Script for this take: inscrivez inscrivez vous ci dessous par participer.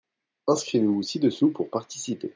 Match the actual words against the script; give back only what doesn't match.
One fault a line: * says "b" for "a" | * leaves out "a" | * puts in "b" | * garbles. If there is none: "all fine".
* leaves out "inscrivez"
* says "pour" for "par"